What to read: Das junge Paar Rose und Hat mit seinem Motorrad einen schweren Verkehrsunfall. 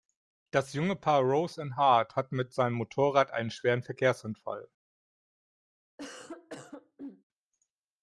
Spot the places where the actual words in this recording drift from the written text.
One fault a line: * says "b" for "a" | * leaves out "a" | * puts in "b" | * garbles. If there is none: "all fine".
* puts in "Hart"